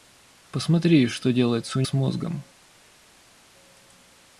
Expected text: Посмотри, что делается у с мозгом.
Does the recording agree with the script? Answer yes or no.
yes